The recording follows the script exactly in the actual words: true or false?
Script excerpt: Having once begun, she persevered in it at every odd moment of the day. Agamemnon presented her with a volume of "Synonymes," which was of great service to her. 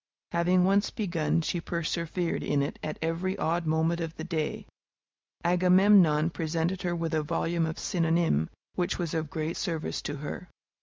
true